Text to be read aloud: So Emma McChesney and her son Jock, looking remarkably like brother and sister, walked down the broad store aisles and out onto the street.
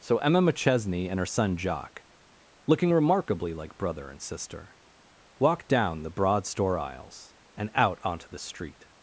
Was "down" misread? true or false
false